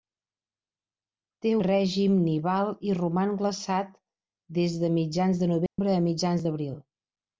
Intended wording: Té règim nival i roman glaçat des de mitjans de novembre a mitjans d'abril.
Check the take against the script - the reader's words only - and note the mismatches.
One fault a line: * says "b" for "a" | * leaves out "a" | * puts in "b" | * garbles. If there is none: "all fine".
all fine